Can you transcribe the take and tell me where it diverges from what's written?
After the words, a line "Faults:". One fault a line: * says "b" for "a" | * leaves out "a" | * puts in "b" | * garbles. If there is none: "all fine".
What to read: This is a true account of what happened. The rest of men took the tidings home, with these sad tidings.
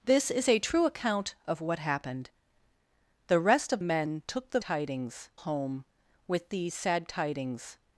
This is a true account of what happened. The rest of men took the tidings home, with these sad tidings.
Faults:
all fine